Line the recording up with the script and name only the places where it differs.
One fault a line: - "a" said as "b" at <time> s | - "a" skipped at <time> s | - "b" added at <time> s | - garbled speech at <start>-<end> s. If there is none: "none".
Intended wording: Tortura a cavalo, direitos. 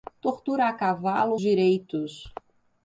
none